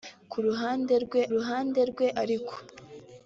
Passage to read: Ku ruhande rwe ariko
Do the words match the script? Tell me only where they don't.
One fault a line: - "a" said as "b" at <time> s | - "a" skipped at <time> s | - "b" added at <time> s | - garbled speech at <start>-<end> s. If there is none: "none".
- "ruhande rwe" added at 1.3 s